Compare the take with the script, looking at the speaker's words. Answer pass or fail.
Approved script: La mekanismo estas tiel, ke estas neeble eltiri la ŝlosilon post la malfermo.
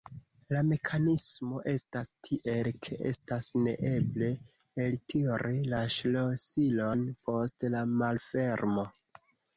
pass